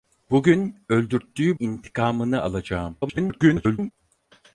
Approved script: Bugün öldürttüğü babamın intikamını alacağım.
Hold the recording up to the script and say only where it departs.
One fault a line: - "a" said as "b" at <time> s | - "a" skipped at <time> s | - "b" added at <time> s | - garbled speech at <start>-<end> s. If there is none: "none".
- "babamın" skipped at 1.6 s
- garbled speech at 3.0-3.9 s